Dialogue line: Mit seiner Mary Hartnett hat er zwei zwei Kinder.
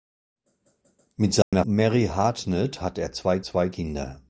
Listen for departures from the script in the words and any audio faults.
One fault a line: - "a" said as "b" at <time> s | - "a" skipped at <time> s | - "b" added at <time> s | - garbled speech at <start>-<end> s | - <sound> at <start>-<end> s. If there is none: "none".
- dropout at 1.4-1.5 s